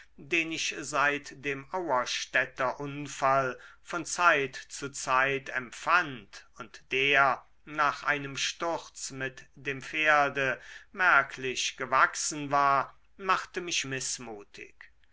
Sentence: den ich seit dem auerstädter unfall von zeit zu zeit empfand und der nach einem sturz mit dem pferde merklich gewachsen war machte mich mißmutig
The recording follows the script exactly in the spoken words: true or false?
true